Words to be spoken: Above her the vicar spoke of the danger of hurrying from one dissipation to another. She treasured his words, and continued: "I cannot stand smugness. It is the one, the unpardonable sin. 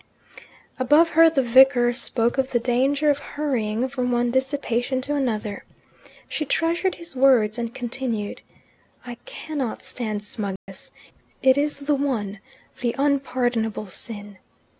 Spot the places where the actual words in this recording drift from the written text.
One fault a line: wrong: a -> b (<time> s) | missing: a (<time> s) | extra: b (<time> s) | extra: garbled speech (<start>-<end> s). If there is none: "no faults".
no faults